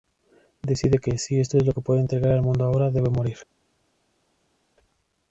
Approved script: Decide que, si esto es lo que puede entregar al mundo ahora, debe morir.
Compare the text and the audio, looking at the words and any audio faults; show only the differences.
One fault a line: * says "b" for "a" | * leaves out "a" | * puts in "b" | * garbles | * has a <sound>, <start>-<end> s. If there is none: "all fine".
all fine